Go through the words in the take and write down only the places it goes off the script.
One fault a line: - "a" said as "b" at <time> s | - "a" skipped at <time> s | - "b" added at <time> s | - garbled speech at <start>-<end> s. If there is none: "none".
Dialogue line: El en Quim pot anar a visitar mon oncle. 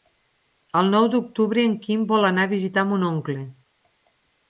- "nou d'octubre" added at 0.9 s
- "pot" said as "vol" at 2.1 s